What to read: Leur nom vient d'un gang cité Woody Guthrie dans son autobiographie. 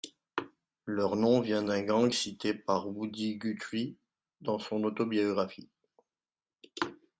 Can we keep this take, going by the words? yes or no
no